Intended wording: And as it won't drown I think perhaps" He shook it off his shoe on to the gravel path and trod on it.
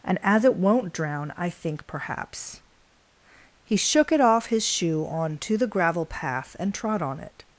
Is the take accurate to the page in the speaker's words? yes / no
yes